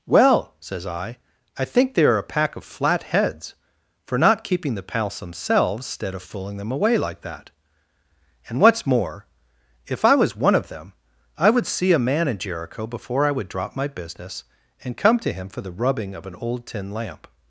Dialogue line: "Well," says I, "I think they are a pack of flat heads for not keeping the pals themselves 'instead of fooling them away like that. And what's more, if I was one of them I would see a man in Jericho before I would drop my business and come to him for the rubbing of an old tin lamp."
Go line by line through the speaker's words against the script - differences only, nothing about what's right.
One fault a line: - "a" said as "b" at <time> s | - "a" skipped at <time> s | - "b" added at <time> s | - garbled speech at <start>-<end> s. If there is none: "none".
none